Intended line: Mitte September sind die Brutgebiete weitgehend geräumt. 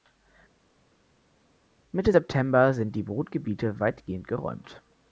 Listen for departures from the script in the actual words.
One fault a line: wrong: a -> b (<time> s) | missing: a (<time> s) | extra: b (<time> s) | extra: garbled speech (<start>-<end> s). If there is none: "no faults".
no faults